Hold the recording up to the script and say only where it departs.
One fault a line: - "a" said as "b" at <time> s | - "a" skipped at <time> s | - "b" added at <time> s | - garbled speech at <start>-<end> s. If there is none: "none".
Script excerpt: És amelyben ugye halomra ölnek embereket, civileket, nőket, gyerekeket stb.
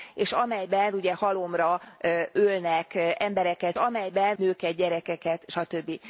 - "civileket" said as "amelyben" at 3.7 s